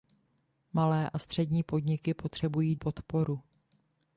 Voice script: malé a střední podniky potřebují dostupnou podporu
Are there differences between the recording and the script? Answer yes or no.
yes